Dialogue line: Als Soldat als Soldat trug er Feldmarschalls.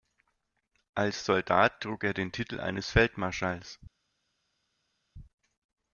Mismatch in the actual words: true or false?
true